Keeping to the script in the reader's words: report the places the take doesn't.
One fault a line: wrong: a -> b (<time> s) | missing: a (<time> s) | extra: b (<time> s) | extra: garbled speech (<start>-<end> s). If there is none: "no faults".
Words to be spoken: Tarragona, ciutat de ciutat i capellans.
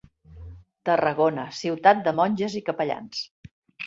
wrong: ciutat -> monges (2.2 s)